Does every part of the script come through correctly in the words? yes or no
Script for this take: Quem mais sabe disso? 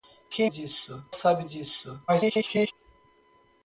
no